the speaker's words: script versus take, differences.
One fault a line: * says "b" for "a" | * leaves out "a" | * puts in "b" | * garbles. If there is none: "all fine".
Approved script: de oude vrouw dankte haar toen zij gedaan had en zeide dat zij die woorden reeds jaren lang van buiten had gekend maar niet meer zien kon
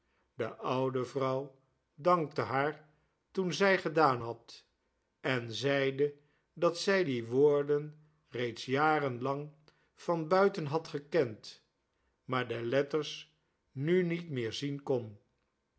* puts in "de letters nu"